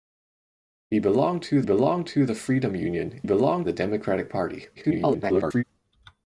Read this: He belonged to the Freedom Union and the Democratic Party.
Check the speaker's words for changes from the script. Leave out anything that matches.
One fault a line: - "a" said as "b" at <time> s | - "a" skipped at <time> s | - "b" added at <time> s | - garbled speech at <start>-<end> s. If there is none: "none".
- "belonged to" added at 1.6 s
- "and" said as "belonged" at 3.2 s
- garbled speech at 4.7-5.6 s